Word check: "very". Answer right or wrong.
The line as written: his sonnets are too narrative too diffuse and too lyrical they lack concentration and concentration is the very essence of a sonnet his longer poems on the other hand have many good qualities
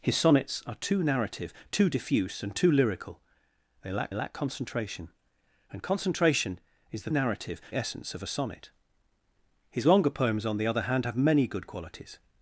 wrong